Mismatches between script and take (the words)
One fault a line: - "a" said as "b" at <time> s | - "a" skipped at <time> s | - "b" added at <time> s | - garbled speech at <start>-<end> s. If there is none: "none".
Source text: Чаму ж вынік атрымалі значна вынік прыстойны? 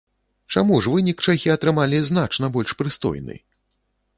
- "чэхі" added at 1.3 s
- "вынік" said as "больш" at 2.6 s